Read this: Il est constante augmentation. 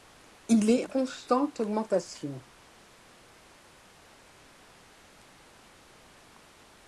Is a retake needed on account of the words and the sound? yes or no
no